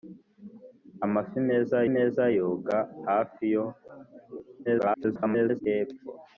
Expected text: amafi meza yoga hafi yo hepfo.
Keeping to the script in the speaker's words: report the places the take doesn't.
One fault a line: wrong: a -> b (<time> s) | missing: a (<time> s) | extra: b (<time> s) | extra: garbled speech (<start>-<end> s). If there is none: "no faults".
extra: meza (1.9 s)
extra: garbled speech (4.6-5.6 s)